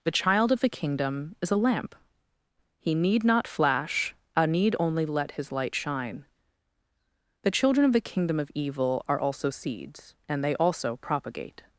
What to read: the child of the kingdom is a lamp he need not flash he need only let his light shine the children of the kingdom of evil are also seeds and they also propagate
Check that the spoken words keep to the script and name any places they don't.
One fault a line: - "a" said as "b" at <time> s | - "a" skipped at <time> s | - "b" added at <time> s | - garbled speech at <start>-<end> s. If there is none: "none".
- "he" said as "a" at 4.3 s